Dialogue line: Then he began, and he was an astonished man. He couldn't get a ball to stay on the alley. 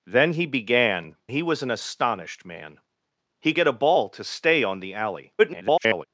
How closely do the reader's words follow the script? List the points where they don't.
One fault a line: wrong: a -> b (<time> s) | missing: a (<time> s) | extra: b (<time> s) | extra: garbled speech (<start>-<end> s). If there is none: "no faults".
missing: and (1.1 s)
missing: couldn't (3.5 s)
extra: garbled speech (5.4-6.1 s)